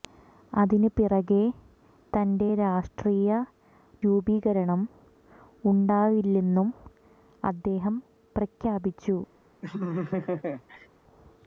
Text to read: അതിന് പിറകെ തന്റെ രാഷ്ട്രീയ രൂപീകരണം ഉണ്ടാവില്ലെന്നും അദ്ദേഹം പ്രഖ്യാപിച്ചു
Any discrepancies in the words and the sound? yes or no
yes